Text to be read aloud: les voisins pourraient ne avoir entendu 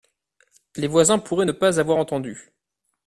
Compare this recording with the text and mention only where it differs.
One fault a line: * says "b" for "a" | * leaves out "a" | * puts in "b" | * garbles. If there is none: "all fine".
* puts in "pas"